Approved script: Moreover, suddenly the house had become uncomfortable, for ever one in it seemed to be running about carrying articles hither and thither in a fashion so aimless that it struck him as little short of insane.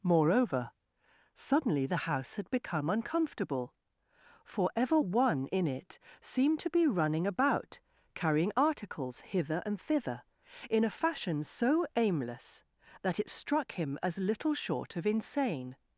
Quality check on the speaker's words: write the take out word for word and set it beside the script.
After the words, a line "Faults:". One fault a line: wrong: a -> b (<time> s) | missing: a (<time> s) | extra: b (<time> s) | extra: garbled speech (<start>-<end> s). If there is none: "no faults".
Moreover, suddenly the house had become uncomfortable, for ever one in it seemed to be running about carrying articles hither and thither in a fashion so aimless that it struck him as little short of insane.
Faults:
no faults